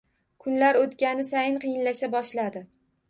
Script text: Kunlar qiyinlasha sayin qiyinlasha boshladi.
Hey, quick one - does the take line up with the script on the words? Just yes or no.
no